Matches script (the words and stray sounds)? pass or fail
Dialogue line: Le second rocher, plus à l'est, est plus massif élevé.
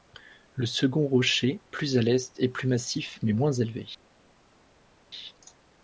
fail